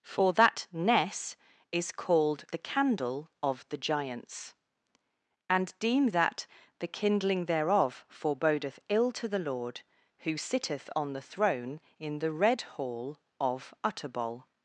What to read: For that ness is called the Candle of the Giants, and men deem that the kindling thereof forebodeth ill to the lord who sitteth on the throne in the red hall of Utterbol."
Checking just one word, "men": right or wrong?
wrong